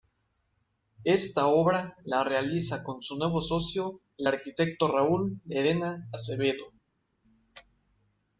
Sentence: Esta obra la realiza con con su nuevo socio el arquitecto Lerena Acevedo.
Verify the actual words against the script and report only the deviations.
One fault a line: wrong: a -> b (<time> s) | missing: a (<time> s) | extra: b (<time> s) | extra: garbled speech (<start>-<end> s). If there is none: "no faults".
missing: con (3.0 s)
extra: Raúl (4.9 s)